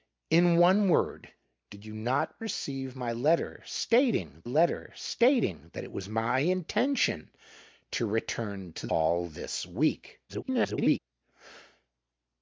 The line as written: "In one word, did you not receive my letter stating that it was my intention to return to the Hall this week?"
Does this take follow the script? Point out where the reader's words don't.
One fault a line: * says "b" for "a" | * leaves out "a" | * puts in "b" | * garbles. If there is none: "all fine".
* puts in "letter stating"
* leaves out "the"
* garbles